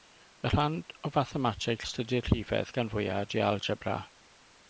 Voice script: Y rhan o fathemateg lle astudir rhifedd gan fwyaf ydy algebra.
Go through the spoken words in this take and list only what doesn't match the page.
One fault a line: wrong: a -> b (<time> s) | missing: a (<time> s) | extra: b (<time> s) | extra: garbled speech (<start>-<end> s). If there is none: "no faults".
missing: lle (1.9 s)